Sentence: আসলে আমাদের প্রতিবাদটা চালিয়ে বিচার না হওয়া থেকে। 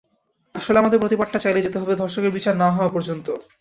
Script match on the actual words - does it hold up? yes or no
no